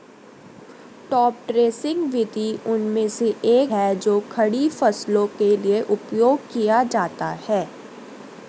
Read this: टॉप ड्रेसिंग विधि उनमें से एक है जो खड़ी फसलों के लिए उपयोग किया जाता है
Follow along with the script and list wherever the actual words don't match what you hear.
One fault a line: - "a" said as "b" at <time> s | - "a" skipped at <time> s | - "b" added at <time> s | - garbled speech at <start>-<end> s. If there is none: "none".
none